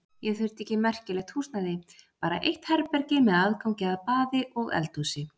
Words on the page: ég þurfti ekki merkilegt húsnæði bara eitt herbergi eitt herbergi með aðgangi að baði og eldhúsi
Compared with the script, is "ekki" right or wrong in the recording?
right